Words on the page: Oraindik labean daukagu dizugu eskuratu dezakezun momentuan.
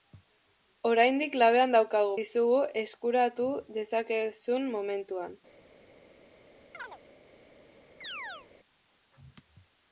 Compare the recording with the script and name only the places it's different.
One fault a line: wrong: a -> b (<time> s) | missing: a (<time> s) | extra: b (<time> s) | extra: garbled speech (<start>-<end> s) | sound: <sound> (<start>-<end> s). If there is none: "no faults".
sound: chirp (6.7-7.0 s)
sound: chirp (8.0-8.5 s)